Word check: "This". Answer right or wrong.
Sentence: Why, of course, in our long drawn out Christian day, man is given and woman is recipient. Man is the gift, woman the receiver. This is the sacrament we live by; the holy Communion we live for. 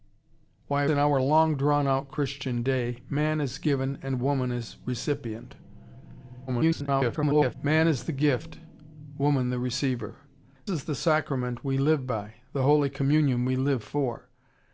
wrong